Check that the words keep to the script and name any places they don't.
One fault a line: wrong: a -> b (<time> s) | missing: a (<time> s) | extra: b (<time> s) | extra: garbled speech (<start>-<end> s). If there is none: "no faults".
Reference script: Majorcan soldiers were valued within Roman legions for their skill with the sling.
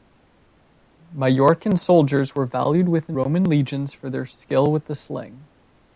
no faults